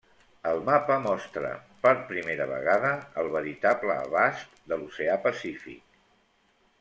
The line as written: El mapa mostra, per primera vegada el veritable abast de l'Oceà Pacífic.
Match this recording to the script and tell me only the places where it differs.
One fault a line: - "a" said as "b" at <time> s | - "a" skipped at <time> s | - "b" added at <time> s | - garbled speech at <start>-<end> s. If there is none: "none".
none